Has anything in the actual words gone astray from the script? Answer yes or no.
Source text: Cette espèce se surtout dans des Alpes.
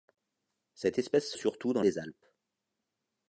no